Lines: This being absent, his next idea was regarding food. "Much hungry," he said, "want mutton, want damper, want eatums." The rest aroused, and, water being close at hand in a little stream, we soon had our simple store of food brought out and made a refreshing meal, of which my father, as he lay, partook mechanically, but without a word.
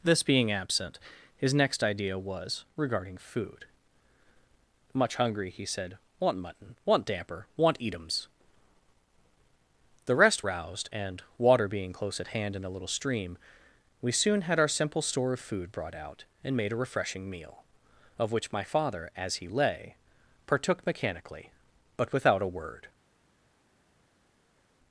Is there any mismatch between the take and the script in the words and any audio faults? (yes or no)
no